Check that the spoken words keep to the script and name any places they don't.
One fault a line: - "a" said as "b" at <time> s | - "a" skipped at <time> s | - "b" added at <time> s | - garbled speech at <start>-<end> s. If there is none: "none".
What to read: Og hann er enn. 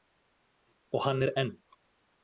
none